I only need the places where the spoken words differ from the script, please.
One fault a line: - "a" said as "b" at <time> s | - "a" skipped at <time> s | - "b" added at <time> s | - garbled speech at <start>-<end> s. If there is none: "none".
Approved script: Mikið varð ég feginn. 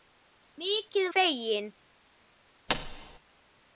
- "varð ég" skipped at 1.1 s